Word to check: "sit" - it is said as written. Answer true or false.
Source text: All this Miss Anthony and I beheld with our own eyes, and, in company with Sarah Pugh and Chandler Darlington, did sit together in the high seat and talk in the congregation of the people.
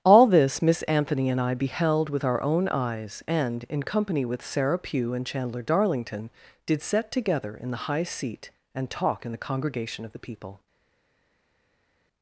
false